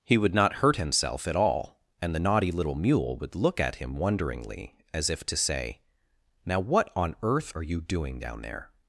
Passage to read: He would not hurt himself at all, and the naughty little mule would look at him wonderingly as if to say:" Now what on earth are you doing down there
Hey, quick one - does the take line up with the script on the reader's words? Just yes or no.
yes